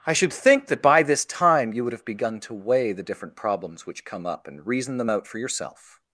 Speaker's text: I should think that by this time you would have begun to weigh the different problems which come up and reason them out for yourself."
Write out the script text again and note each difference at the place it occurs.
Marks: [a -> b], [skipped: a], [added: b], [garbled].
I should think that by this time you would have begun to weigh the different problems which come up and reason them out for yourself."